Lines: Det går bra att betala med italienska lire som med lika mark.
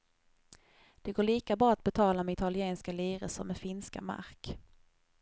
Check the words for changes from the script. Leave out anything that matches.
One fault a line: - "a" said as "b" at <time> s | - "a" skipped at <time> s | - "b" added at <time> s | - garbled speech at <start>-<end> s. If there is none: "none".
- "lika" added at 1.2 s
- "lika" said as "finska" at 3.6 s